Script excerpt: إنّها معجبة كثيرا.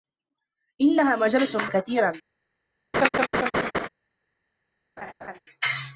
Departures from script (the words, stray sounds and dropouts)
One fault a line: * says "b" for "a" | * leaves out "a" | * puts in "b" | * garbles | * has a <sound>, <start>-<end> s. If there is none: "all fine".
* has a laugh, 2.9-3.9 s
* has a laugh, 5.0-5.4 s